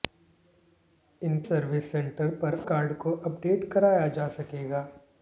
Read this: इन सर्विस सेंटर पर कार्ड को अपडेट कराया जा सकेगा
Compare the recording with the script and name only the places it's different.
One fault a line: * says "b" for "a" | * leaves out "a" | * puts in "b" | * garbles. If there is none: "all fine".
all fine